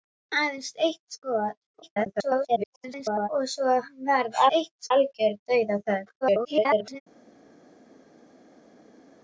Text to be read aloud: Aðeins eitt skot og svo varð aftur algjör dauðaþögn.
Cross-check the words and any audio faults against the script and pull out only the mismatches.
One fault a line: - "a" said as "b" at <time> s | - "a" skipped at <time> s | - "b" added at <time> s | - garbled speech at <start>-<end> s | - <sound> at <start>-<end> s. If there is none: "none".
- garbled speech at 1.8-3.3 s
- "aftur" said as "eitt" at 4.6 s
- garbled speech at 6.2-7.0 s